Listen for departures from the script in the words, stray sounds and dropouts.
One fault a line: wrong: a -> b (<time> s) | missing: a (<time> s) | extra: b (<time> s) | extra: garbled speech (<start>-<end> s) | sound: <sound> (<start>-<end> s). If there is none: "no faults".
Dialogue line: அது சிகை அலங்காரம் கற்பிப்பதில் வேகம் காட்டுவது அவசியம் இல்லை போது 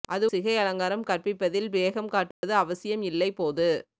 sound: dropout (2.3-2.4 s)